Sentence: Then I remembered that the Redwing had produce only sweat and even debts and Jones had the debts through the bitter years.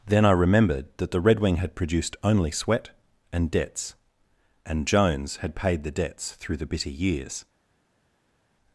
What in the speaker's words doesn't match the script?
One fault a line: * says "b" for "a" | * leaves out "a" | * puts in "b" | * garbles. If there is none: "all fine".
* says "produced" for "produce"
* leaves out "even"
* puts in "paid"